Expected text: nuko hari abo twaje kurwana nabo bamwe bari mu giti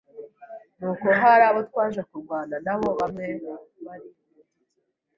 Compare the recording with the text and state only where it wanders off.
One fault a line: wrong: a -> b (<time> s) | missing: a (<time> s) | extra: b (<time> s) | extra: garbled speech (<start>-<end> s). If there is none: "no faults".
no faults